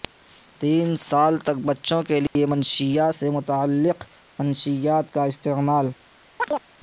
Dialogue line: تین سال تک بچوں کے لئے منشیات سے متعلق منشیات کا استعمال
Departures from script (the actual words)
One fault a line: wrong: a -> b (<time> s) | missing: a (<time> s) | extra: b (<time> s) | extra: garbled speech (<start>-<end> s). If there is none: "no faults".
no faults